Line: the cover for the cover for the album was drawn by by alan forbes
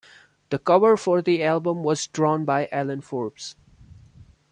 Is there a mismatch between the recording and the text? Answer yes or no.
yes